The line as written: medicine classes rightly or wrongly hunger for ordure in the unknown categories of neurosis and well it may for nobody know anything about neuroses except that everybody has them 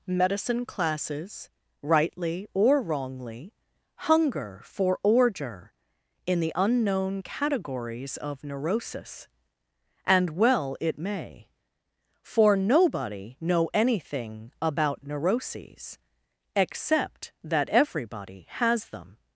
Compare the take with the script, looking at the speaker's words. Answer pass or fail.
pass